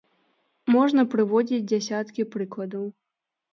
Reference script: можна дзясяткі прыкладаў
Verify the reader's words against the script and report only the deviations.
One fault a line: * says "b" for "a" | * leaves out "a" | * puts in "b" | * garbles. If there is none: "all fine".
* puts in "прыводзіць"